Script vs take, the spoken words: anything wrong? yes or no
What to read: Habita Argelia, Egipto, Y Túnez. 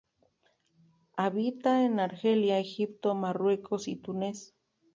yes